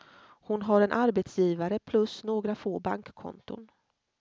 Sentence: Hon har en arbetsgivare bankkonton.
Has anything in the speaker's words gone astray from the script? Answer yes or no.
yes